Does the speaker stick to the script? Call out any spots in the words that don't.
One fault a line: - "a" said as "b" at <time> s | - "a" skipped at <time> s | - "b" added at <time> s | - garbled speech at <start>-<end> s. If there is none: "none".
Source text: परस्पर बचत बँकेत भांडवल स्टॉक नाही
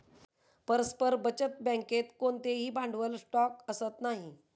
- "कोणतेही" added at 2.2 s
- "असत" added at 3.7 s